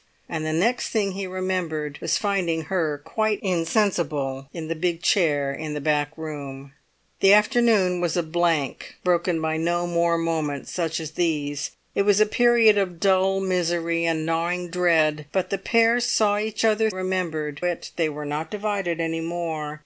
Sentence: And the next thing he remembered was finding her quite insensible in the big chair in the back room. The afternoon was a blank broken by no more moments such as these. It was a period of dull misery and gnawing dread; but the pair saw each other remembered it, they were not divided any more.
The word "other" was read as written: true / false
true